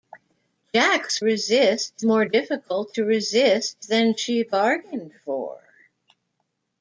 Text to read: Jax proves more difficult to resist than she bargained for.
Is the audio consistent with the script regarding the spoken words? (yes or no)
no